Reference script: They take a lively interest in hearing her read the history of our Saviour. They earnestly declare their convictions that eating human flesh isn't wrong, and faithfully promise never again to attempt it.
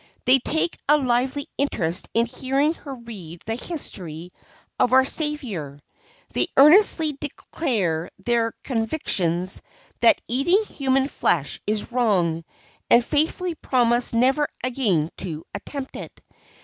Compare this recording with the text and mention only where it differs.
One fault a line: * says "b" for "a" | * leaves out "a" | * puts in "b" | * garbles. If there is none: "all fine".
* says "is" for "isn't"